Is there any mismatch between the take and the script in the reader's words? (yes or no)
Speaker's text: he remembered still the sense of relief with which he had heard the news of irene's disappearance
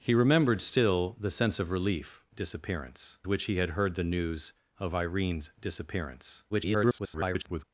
yes